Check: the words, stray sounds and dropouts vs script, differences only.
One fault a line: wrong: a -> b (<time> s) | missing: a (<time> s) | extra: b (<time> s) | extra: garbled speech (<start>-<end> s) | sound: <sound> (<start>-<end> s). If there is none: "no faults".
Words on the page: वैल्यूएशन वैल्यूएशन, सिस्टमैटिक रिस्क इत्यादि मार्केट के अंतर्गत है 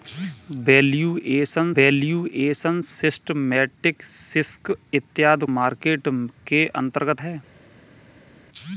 no faults